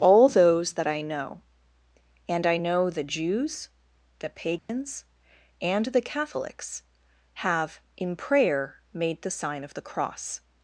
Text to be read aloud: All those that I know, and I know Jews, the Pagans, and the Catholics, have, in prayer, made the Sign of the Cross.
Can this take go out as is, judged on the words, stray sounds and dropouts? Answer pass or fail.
fail